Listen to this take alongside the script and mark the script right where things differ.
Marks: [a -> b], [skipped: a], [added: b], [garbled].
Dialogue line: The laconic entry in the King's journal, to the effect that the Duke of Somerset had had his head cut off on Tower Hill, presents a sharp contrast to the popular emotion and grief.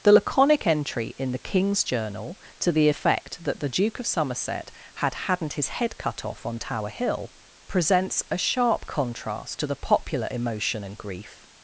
The laconic entry in the King's journal, to the effect that the Duke of Somerset had [had -> hadn't] his head cut off on Tower Hill, presents a sharp contrast to the popular emotion and grief.